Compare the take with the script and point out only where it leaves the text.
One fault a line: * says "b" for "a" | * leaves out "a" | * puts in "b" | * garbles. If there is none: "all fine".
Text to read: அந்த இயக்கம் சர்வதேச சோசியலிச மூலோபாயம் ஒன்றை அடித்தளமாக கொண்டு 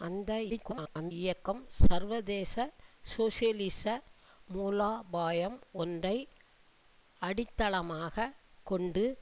* garbles